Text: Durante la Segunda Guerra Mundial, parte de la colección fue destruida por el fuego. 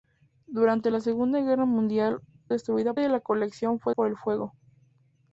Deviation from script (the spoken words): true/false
true